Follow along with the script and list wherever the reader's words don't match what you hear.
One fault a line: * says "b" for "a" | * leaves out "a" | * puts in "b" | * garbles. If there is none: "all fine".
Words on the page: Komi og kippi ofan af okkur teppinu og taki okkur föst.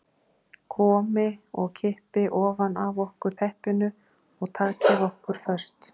all fine